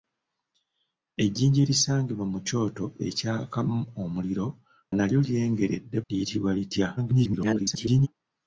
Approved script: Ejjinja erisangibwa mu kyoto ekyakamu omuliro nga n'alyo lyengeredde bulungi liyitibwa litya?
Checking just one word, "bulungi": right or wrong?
wrong